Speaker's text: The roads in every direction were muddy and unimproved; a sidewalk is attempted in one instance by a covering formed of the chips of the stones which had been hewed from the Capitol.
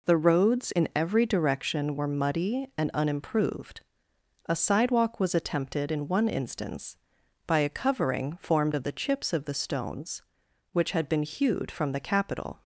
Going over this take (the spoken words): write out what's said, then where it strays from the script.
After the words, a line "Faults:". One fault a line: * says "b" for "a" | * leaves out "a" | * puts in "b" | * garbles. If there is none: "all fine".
The roads in every direction were muddy and unimproved; a sidewalk was attempted in one instance by a covering formed of the chips of the stones which had been hewed from the Capitol.
Faults:
* says "was" for "is"